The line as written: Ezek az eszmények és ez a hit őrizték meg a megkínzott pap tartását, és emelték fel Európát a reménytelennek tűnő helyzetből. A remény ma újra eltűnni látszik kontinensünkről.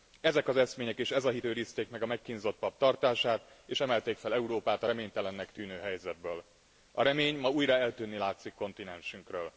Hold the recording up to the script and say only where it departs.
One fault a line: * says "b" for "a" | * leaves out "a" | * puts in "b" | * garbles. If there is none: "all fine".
all fine